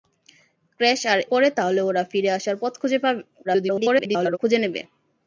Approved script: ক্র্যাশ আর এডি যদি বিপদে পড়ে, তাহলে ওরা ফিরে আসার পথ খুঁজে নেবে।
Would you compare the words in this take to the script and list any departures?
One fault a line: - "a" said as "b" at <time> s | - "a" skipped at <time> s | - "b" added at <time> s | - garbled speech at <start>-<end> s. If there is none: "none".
- "এডি যদি বিপদে" skipped at 1.2 s
- garbled speech at 3.4-4.4 s